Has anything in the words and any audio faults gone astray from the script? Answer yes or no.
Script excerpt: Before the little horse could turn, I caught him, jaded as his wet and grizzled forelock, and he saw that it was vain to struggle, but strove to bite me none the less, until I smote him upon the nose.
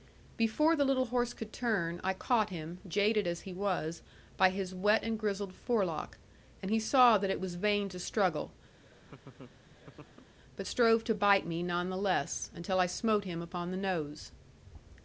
yes